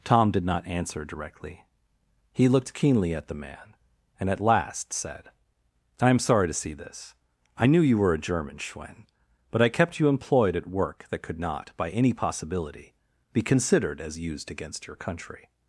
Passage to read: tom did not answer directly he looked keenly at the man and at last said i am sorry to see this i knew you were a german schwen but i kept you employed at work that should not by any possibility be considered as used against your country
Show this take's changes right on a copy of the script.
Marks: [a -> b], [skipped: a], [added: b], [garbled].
tom did not answer directly he looked keenly at the man and at last said i am sorry to see this i knew you were a german schwen but i kept you employed at work that [should -> could] not by any possibility be considered as used against your country